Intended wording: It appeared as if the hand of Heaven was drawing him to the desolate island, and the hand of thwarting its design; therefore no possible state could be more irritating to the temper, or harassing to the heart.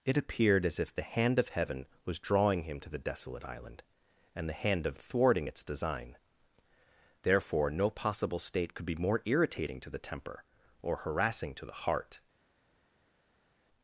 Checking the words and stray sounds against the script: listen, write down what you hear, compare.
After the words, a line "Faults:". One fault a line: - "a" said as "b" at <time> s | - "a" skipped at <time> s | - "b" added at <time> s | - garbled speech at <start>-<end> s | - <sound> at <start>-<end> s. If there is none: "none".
It appeared as if the hand of Heaven was drawing him to the desolate island, and the hand of thwarting its design; therefore no possible state could be more irritating to the temper, or harassing to the heart.
Faults:
none